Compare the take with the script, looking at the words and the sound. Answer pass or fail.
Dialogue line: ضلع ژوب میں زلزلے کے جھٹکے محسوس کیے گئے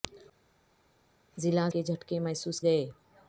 fail